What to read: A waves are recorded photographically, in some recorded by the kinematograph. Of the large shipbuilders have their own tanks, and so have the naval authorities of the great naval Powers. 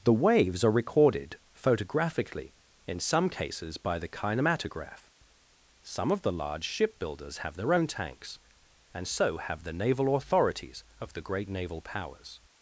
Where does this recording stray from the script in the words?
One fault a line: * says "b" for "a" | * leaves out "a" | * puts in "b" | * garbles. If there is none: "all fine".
* says "The" for "A"
* says "cases" for "recorded"
* puts in "Some"